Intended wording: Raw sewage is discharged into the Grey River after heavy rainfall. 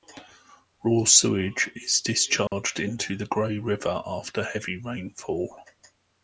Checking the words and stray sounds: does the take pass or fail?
fail